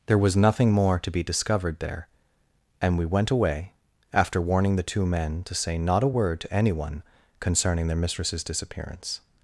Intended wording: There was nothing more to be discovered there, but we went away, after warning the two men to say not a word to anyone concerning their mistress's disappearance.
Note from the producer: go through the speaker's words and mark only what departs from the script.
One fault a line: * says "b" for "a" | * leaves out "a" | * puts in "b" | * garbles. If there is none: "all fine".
* says "and" for "but"